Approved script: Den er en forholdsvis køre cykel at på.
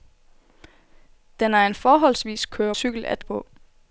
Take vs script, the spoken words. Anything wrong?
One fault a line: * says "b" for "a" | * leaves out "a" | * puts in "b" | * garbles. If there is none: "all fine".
all fine